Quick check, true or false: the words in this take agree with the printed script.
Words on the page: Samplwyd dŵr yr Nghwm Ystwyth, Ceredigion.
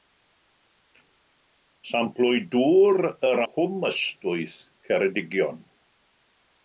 true